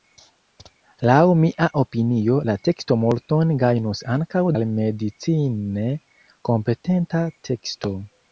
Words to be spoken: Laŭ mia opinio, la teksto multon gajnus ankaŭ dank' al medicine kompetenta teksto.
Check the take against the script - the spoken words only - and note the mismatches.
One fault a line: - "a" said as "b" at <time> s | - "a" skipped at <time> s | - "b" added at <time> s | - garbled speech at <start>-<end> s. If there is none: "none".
- "dank" skipped at 4.5 s